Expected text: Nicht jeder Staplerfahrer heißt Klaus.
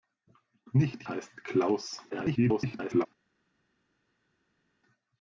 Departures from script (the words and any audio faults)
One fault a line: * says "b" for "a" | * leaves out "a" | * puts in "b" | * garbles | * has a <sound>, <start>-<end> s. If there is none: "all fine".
* leaves out "jeder Staplerfahrer"
* garbles